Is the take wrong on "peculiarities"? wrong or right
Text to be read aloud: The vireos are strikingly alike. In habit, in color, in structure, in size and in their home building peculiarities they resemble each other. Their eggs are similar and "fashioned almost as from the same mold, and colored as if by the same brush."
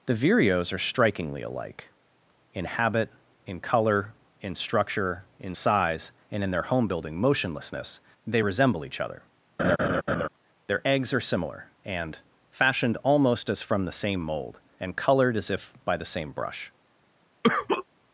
wrong